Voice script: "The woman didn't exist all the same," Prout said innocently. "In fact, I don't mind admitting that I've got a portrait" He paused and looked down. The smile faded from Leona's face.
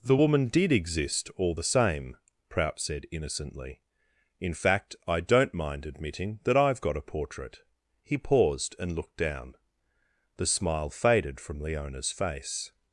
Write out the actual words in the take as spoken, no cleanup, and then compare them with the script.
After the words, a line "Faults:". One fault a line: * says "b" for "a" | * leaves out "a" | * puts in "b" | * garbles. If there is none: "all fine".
"The woman did exist all the same," Prout said innocently. "In fact, I don't mind admitting that I've got a portrait" He paused and looked down. The smile faded from Leona's face.
Faults:
* says "did" for "didn't"